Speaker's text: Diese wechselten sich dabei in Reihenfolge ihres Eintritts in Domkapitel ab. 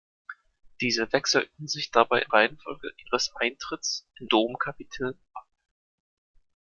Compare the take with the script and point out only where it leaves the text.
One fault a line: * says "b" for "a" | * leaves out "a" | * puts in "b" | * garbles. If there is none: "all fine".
all fine